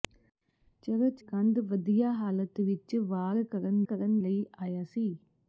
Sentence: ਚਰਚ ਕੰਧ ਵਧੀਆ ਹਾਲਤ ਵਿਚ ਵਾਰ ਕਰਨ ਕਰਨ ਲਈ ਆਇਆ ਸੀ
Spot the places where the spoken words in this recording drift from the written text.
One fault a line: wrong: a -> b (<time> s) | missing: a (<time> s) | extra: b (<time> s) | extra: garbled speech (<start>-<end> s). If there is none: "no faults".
no faults